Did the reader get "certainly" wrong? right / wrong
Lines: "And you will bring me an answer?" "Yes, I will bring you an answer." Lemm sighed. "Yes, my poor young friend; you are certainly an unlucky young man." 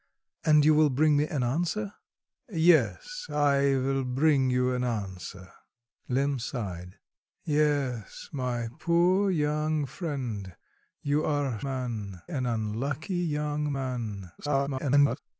wrong